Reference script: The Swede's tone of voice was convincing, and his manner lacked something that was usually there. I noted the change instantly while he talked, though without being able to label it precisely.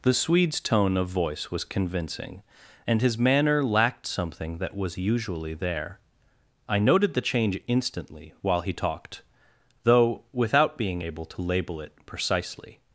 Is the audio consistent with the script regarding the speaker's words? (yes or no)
yes